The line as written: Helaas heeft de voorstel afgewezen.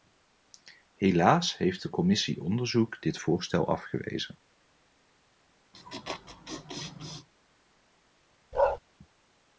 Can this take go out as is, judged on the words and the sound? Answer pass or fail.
fail